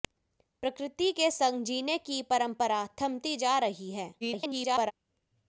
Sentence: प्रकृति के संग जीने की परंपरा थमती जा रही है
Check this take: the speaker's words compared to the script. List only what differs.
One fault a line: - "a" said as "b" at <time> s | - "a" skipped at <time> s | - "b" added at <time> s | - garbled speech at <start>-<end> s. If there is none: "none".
- garbled speech at 4.2-4.9 s